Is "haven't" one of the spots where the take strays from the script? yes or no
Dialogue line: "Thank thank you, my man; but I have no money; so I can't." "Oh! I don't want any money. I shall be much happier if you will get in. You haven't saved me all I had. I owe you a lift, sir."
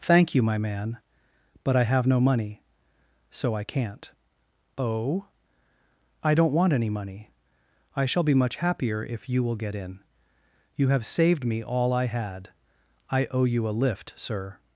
yes